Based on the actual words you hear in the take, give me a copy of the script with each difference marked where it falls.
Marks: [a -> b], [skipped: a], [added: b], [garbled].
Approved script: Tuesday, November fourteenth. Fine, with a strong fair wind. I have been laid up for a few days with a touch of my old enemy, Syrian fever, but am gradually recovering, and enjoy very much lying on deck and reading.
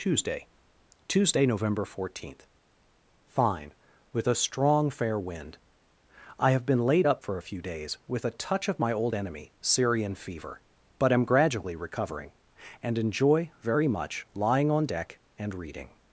Tuesday, [added: tuesday] November fourteenth. Fine, with a strong fair wind. I have been laid up for a few days with a touch of my old enemy, Syrian fever, but am gradually recovering, and enjoy very much lying on deck and reading.